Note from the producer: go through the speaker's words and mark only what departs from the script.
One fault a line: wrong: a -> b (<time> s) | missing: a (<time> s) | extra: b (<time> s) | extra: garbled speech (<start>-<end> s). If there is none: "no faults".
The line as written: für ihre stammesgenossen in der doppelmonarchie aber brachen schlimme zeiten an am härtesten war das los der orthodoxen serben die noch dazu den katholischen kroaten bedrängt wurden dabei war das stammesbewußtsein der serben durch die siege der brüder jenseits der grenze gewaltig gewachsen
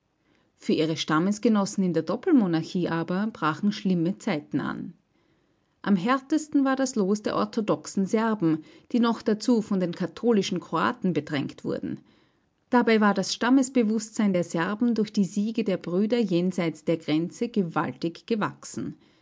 extra: von (9.6 s)